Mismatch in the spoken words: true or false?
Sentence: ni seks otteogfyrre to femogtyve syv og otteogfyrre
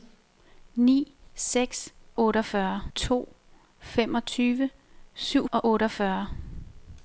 false